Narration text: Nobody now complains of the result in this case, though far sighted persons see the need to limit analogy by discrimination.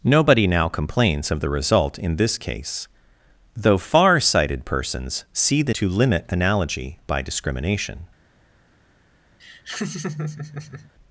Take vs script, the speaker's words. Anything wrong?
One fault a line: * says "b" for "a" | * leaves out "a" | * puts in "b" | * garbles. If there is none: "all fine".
* leaves out "need"